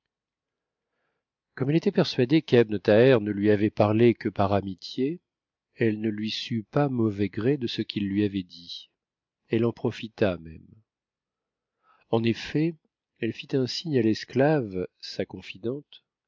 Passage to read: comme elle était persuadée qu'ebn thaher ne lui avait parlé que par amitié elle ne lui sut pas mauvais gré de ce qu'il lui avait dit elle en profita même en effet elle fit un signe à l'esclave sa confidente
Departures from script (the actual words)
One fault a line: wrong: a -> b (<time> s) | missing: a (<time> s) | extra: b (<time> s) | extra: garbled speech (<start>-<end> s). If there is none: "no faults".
no faults